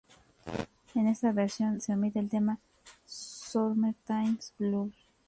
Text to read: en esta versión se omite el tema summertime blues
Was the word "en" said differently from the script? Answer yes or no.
no